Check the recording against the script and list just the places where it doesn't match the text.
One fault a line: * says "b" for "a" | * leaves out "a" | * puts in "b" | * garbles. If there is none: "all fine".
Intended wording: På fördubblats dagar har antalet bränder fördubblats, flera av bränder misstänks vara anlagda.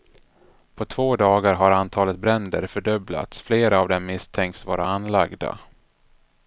* says "två" for "fördubblats"
* says "dem" for "bränder"